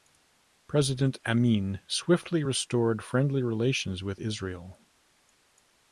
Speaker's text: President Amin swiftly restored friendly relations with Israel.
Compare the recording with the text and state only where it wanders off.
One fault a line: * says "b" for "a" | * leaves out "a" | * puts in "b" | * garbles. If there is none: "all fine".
all fine